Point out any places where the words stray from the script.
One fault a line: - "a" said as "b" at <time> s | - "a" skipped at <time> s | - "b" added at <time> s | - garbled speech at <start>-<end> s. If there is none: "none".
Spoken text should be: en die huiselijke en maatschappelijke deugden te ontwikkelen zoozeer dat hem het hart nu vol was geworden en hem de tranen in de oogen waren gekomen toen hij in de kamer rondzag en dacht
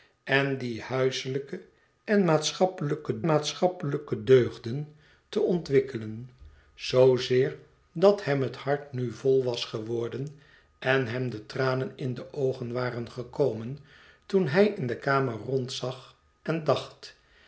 - "maatschappelijke" added at 3.3 s